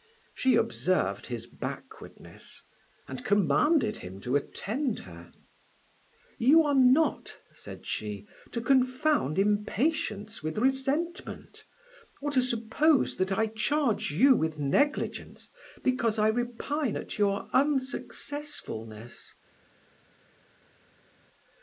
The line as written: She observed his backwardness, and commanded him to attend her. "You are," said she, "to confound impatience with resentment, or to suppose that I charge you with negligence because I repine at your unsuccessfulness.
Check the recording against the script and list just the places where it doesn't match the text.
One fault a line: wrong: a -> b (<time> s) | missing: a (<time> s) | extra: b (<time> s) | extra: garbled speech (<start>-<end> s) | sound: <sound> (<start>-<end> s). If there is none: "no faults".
extra: not (6.7 s)